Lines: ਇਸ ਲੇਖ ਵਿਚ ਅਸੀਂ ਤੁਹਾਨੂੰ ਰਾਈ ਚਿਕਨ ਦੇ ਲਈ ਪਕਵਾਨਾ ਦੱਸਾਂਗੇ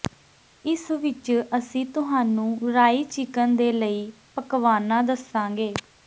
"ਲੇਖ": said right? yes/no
no